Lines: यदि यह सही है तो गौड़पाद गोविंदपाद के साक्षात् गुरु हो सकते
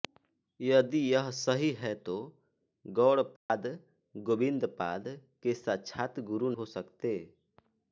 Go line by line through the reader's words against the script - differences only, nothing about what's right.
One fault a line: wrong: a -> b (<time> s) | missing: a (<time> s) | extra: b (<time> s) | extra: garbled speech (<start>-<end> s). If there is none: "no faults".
no faults